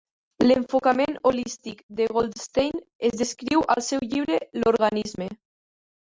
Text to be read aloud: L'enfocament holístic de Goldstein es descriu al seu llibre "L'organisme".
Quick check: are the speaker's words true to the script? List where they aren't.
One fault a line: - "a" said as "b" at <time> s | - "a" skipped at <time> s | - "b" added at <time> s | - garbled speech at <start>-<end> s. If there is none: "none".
none